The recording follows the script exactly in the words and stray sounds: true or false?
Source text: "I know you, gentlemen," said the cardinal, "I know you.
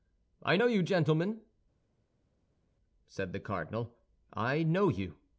true